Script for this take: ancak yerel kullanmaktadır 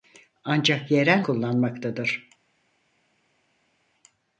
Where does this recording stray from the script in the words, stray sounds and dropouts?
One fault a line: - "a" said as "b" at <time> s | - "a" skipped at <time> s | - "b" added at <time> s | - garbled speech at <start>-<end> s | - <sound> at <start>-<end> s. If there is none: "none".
none